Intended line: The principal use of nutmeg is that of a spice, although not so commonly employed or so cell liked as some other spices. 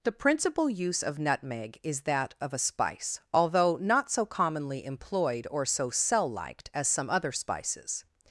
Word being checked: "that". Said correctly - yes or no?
yes